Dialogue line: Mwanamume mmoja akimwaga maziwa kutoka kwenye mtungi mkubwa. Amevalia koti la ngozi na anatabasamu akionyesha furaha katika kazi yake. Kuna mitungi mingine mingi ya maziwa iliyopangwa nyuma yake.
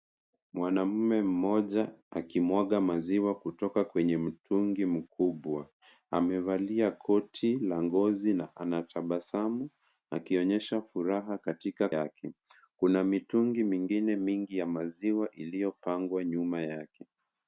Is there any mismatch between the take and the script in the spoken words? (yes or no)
yes